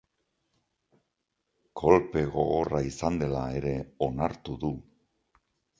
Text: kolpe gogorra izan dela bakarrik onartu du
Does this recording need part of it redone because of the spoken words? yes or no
yes